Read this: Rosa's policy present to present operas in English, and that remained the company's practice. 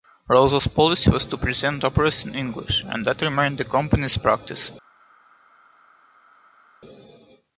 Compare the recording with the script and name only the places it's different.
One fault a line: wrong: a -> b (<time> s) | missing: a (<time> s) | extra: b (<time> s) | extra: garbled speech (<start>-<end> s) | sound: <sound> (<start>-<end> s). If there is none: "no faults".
wrong: present -> was (1.1 s)